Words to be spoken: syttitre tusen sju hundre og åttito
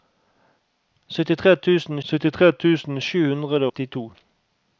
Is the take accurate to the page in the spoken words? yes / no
no